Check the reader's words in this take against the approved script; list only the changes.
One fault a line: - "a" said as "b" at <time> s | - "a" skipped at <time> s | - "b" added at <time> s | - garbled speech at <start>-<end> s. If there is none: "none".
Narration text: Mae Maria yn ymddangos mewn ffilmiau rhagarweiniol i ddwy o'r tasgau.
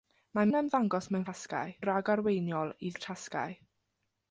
- "Maria" skipped at 0.5 s
- "ffilmiau" said as "tasgau" at 1.3 s
- "ddwy" skipped at 2.9 s